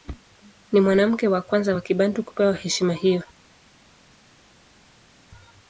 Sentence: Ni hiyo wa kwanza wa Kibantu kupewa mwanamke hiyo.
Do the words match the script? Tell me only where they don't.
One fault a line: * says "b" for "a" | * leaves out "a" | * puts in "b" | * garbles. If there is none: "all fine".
* says "mwanamke" for "hiyo"
* says "heshima" for "mwanamke"